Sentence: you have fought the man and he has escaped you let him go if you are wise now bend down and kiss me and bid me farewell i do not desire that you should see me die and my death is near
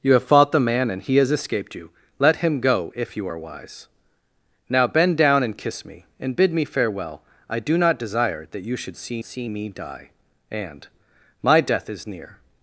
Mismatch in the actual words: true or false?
true